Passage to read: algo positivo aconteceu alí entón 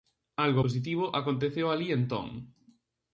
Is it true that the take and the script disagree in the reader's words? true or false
false